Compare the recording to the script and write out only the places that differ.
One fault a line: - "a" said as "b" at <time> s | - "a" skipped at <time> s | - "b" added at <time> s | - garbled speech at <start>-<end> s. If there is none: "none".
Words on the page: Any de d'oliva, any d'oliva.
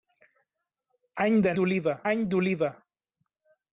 none